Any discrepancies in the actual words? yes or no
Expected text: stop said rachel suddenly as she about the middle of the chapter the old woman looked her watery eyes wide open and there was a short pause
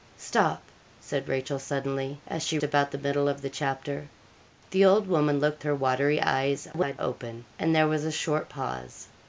no